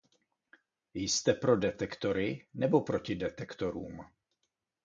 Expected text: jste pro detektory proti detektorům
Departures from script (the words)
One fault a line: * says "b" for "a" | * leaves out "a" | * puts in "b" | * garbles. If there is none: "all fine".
* puts in "nebo"